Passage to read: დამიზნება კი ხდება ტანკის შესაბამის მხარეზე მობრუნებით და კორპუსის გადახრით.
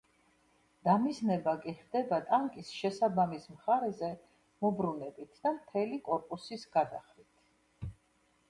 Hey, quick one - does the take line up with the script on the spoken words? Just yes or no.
no